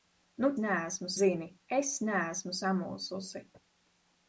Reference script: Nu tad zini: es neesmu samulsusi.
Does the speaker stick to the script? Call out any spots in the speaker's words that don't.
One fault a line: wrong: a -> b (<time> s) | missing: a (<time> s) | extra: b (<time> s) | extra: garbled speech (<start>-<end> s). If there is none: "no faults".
wrong: tad -> neesmu (0.6 s)